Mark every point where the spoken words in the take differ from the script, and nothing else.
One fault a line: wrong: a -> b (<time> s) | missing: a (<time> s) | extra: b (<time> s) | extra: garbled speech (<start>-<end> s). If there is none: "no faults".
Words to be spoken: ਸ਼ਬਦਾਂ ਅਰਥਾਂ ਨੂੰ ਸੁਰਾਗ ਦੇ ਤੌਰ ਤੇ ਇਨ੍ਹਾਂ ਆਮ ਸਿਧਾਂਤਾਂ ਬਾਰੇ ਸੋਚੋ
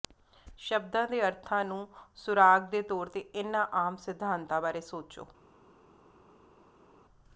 extra: ਦੇ (1.1 s)